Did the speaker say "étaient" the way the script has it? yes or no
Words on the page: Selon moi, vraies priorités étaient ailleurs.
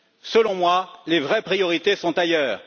no